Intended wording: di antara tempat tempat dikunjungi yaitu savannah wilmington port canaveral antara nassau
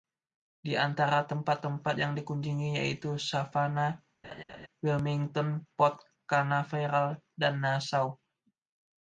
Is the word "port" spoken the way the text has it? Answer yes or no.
yes